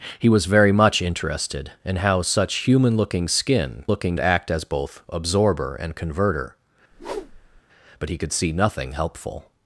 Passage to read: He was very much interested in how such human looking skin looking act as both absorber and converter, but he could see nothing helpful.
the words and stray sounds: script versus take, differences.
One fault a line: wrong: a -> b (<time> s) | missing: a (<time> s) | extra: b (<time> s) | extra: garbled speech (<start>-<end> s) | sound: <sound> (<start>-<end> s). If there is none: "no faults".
sound: whoosh (6.9-7.6 s)